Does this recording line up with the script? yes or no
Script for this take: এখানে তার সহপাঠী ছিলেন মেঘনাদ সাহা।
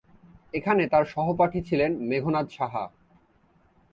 yes